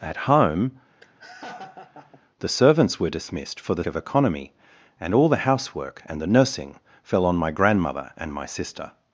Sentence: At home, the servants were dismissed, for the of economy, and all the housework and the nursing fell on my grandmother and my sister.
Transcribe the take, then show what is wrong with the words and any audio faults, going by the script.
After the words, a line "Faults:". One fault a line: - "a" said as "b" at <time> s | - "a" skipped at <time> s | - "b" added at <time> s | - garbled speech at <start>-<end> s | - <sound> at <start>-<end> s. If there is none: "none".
At home, the servants were dismissed, for the of economy, and all the housework and the nursing fell on my grandmother and my sister.
Faults:
- laugh at 1.0-2.2 s